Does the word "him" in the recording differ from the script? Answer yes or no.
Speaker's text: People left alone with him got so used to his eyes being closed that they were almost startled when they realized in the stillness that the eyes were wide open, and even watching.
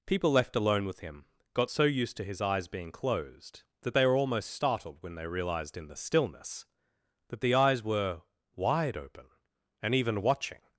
no